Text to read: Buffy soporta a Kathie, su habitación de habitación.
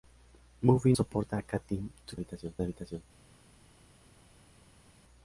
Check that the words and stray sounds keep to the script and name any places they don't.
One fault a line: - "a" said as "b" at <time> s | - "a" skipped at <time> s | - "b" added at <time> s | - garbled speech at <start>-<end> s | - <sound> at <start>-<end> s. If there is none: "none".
none